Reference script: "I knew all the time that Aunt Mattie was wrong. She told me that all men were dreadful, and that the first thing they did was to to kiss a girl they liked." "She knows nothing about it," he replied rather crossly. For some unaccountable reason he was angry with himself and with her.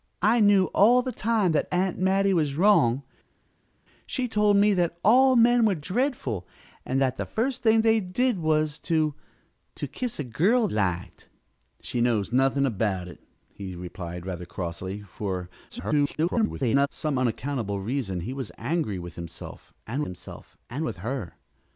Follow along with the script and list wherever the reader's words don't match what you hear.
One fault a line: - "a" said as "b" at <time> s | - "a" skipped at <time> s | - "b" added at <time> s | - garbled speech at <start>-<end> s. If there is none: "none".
- "they" skipped at 10.7 s
- garbled speech at 15.7-16.9 s
- "himself and" added at 20.0 s